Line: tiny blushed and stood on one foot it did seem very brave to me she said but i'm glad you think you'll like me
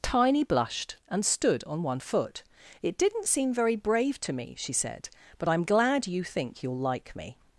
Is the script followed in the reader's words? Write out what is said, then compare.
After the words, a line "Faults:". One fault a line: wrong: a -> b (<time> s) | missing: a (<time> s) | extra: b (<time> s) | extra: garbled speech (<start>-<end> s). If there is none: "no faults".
tiny blushed and stood on one foot it didn't seem very brave to me she said but i'm glad you think you'll like me
Faults:
wrong: did -> didn't (3.0 s)